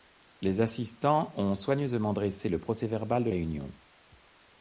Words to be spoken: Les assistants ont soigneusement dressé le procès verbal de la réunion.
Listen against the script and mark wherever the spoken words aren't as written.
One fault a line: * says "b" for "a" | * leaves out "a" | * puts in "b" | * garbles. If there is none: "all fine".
* leaves out "la"